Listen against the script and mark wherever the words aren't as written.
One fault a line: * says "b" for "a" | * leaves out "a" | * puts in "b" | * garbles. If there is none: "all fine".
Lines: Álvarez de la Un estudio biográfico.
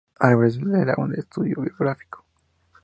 all fine